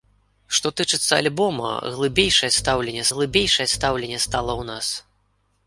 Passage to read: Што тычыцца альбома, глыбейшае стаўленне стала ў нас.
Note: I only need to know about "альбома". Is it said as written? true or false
true